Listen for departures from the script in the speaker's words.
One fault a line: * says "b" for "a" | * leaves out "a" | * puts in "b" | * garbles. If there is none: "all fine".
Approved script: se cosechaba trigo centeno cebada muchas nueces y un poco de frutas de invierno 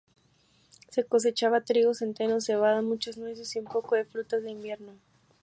all fine